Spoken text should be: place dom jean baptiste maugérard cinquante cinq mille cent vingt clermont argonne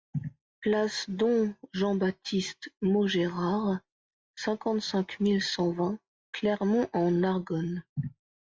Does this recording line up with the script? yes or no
no